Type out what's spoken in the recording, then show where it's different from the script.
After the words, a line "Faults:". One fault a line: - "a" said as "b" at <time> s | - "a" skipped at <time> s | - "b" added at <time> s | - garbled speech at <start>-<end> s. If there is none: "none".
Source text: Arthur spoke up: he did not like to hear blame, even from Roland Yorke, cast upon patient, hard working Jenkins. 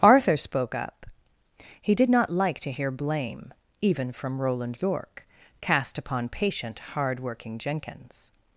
Arthur spoke up: he did not like to hear blame, even from Roland Yorke, cast upon patient, hard working Jenkins.
Faults:
none